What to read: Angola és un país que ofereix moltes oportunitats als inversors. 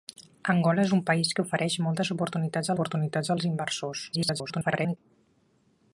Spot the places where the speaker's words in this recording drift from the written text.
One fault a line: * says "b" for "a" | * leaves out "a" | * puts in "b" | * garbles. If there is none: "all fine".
* puts in "oportunitats"
* garbles